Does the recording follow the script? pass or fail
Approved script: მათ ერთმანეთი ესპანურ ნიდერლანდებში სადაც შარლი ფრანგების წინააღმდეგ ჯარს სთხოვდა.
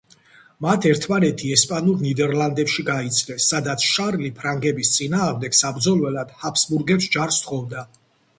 fail